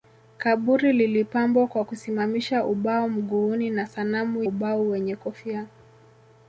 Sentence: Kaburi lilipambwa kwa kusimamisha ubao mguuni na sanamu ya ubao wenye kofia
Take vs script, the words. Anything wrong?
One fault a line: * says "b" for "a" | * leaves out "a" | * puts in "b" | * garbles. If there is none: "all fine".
* leaves out "ya"